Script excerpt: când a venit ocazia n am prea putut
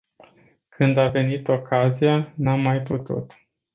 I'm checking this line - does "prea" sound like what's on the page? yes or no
no